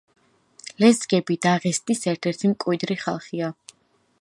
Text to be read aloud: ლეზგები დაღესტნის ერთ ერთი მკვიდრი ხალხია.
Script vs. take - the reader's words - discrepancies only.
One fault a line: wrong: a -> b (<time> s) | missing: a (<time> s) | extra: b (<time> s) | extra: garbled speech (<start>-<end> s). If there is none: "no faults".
no faults